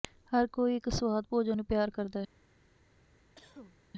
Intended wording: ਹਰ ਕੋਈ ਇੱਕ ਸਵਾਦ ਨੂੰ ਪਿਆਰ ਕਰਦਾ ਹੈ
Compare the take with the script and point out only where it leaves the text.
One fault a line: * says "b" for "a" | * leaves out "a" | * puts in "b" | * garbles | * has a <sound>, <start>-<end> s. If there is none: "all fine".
* puts in "ਭੋਜਨ"
* has a cough, 3.4-3.8 s